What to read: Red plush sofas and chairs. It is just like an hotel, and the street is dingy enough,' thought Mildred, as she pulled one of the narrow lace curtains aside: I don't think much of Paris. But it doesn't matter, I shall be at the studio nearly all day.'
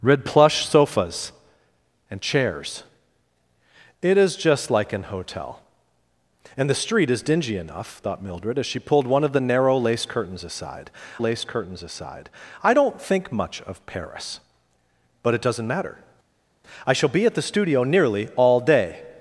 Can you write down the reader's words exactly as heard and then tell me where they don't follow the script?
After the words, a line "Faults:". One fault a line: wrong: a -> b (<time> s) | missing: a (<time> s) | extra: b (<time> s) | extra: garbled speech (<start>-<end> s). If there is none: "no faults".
Red plush sofas and chairs. It is just like an hotel, and the street is dingy enough,' thought Mildred, as she pulled one of the narrow lace curtains aside lace curtains aside: I don't think much of Paris. But it doesn't matter, I shall be at the studio nearly all day.'
Faults:
extra: lace curtains aside (11.2 s)